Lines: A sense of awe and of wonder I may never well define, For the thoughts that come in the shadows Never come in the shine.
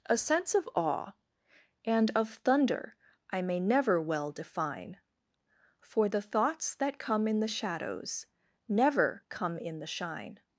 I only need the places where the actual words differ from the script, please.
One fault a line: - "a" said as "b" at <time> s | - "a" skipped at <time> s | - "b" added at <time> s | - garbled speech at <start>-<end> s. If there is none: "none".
- "wonder" said as "thunder" at 2.3 s